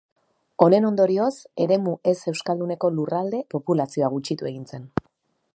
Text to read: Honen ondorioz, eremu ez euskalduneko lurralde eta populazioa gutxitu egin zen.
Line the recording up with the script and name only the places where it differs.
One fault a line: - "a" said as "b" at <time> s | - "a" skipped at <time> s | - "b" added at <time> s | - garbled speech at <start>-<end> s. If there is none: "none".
- "eta" skipped at 3.5 s